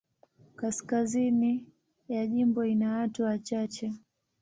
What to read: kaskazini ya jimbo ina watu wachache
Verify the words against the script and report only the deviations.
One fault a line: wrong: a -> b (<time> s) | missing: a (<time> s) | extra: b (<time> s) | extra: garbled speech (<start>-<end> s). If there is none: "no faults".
no faults